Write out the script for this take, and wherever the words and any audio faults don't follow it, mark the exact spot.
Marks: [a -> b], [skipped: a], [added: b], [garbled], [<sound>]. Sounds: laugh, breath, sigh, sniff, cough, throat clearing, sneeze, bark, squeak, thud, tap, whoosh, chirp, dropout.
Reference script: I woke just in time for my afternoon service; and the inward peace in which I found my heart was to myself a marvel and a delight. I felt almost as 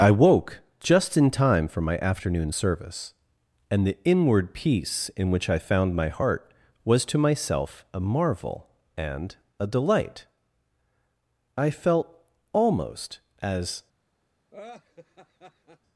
I woke just in time for my afternoon service; and the inward peace in which I found my heart was to myself a marvel and a delight. I felt almost as [laugh]